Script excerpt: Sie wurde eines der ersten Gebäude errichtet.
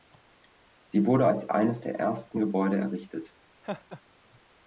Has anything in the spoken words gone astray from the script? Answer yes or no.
yes